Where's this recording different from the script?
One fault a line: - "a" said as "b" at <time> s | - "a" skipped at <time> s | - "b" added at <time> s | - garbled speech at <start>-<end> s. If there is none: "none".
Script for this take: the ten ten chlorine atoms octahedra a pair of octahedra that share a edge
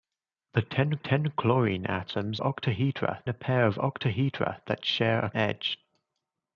none